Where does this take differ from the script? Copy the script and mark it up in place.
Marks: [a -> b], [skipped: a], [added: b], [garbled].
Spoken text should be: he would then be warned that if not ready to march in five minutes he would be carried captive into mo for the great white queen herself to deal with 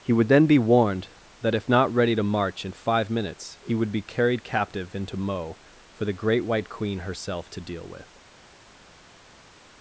he would then be warned that if not ready to march in five minutes he would be carried captive into mo for the great white queen herself to deal with